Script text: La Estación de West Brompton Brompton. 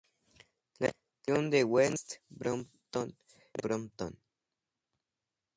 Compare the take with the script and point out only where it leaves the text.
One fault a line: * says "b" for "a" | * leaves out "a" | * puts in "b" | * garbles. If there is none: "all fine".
all fine